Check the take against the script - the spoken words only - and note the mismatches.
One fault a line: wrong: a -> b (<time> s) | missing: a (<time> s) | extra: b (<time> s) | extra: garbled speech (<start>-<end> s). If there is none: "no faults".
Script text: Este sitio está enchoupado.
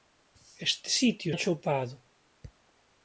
missing: está (1.3 s)